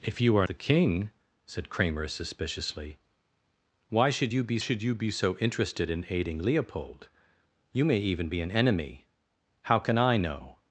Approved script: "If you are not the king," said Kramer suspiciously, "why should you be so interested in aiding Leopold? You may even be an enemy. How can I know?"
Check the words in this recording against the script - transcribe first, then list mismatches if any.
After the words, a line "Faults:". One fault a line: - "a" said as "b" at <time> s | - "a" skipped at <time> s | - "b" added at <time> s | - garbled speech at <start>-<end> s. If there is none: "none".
"If you are the king," said Kramer suspiciously, "why should you be should you be so interested in aiding Leopold? You may even be an enemy. How can I know?"
Faults:
- "not" skipped at 0.5 s
- "should you be" added at 4.6 s